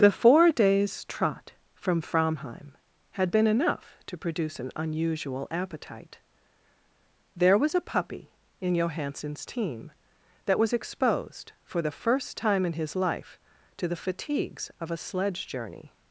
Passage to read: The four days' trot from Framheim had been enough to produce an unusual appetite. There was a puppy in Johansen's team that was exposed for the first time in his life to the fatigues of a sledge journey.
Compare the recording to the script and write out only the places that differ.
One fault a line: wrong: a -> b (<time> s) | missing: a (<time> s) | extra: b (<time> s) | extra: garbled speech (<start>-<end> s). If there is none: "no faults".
no faults